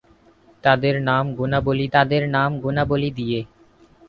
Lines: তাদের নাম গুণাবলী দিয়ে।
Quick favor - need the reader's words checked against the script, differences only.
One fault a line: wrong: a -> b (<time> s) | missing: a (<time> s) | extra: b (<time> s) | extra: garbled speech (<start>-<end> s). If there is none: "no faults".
extra: তাদের নাম গুণাবলী (1.9 s)